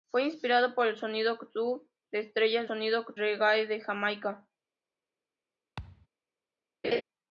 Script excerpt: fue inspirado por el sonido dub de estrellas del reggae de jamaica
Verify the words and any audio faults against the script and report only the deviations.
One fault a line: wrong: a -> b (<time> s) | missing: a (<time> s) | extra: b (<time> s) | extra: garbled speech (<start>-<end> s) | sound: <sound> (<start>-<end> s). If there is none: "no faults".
wrong: del -> sonido (2.6 s)
sound: thud (5.8-6.1 s)
sound: laugh (6.8-7.0 s)